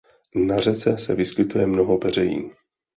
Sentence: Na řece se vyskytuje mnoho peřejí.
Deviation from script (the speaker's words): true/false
false